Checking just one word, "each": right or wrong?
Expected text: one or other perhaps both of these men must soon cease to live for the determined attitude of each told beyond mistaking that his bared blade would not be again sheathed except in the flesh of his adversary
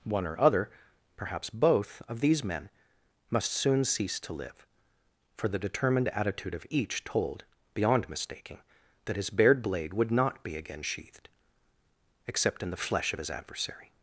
right